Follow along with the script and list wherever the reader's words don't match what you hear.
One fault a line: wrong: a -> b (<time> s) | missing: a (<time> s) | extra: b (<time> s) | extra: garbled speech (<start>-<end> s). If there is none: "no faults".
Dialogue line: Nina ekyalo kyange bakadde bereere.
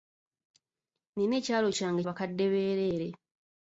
no faults